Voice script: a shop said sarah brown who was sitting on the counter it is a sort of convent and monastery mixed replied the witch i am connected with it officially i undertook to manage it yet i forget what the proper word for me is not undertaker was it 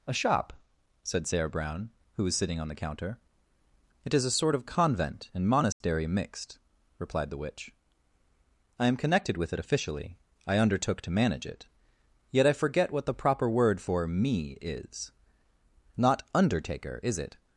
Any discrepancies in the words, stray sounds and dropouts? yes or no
yes